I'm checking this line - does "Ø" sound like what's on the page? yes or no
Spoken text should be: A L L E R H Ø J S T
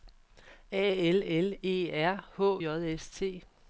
no